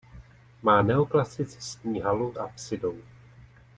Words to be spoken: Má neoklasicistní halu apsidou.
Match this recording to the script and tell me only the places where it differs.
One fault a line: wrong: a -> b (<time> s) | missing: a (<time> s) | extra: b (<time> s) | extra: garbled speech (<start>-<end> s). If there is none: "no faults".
no faults